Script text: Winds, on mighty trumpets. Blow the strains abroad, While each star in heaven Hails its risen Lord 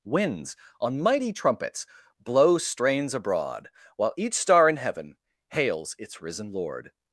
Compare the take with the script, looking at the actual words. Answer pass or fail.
fail